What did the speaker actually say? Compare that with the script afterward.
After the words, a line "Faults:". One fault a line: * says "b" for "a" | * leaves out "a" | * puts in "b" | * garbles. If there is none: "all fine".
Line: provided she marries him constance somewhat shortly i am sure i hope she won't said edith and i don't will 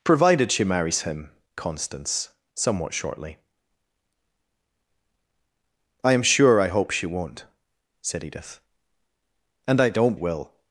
provided she marries him constance somewhat shortly i am sure i hope she won't said edith and i don't will
Faults:
all fine